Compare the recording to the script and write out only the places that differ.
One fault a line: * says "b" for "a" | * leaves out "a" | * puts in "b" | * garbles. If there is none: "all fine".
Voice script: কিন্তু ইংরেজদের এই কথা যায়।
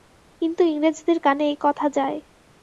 * puts in "কানে"